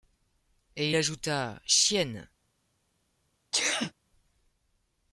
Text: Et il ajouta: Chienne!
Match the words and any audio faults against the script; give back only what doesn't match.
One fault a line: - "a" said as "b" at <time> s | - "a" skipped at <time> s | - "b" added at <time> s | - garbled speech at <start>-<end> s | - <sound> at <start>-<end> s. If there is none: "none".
- sneeze at 3.5-3.9 s